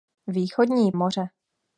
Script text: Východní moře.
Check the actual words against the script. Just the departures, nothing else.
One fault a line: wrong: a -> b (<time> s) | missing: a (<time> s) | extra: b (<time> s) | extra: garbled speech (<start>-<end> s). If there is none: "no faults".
no faults